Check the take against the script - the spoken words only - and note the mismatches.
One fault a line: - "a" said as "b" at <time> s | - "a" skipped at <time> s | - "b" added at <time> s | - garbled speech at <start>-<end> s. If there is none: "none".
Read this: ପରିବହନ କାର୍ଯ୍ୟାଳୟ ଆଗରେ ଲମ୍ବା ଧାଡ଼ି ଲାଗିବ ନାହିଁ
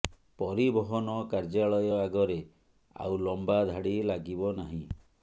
- "ଆଉ" added at 3.0 s